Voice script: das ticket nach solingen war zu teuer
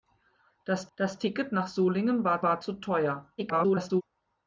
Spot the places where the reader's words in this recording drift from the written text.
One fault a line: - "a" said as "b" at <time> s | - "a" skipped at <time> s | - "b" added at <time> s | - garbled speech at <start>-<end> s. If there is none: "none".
- "das" added at 1.0 s
- "war" added at 2.4 s
- garbled speech at 3.4-4.0 s